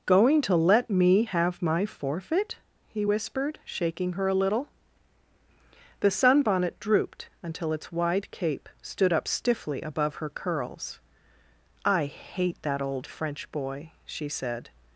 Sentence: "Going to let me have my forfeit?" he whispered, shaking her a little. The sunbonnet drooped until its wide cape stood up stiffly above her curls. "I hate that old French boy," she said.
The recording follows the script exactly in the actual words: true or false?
true